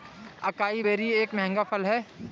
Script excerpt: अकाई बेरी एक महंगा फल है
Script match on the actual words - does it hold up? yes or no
yes